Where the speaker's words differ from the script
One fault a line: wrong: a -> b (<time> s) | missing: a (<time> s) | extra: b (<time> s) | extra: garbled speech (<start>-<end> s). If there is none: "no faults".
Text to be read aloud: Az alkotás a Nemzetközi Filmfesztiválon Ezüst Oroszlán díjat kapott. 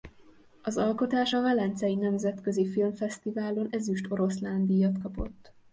extra: Velencei (1.4 s)